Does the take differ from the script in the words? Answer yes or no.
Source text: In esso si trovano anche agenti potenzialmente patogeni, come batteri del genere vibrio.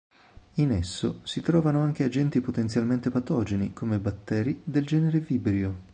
no